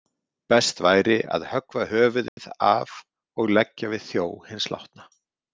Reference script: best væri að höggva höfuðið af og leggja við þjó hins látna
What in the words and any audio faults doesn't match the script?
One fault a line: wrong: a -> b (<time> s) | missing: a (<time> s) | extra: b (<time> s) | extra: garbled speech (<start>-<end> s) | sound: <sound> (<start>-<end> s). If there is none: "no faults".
sound: dropout (2.3-2.4 s)